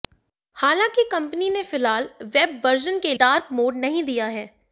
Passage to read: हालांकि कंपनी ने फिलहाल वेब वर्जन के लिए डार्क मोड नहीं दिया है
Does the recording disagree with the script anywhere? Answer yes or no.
yes